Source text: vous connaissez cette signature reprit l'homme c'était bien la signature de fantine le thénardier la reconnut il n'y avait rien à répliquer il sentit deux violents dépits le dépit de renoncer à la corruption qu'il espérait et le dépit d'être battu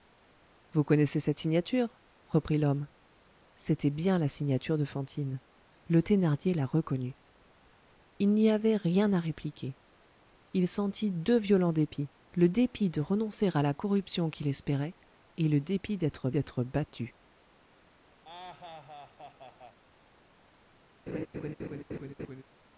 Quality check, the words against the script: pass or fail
fail